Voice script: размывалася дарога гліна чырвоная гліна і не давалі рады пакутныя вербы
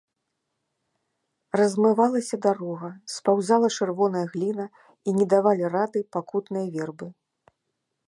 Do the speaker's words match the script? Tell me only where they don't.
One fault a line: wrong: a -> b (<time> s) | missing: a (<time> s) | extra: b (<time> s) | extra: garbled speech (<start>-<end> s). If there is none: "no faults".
wrong: гліна -> спаўзала (3.2 s)